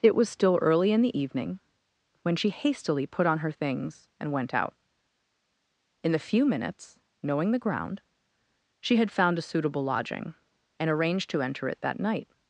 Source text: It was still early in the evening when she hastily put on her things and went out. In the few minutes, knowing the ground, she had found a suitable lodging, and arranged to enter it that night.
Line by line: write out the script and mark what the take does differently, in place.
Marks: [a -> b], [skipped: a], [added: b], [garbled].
It was still early in the evening when she hastily put on her things and went out. In the few minutes, knowing the ground, she had found a suitable lodging, and arranged to enter it that night.